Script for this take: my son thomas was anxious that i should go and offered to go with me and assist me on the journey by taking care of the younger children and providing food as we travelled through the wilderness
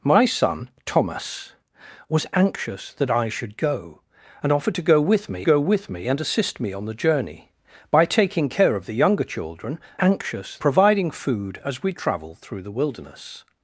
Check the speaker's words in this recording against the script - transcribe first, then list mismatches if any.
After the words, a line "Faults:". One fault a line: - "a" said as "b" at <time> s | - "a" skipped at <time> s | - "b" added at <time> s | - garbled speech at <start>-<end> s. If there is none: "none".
my son thomas was anxious that i should go and offered to go with me go with me and assist me on the journey by taking care of the younger children anxious providing food as we travelled through the wilderness
Faults:
- "go with me" added at 5.5 s
- "and" said as "anxious" at 10.0 s